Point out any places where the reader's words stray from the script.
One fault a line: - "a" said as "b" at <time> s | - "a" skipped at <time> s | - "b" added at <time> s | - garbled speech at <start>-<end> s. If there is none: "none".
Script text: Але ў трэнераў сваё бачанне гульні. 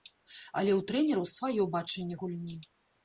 none